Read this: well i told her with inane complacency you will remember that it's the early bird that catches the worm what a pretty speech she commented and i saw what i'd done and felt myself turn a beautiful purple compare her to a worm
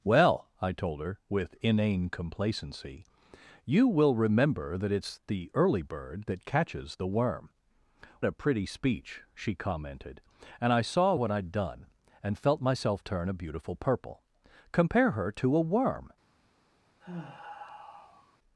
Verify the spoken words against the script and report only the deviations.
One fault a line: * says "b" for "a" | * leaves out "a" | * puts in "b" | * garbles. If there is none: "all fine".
* leaves out "what"